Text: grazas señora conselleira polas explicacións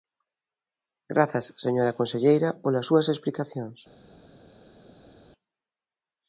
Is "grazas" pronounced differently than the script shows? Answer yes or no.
no